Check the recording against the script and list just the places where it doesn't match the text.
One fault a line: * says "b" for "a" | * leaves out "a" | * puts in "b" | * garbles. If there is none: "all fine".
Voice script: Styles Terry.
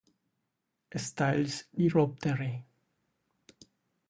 * puts in "y Rob"